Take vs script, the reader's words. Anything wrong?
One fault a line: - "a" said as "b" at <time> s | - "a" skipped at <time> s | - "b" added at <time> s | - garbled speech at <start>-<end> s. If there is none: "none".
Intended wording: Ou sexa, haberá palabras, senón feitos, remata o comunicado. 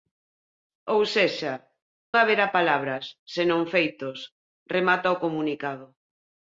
none